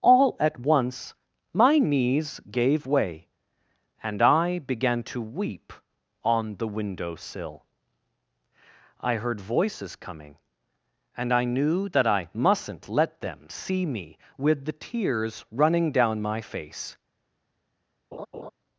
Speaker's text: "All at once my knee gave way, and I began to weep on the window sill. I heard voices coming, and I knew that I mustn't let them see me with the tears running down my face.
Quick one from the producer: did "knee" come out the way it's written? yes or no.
no